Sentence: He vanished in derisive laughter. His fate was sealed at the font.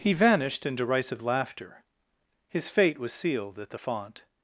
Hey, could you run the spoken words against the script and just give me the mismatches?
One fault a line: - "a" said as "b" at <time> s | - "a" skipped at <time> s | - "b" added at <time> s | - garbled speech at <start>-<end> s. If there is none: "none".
none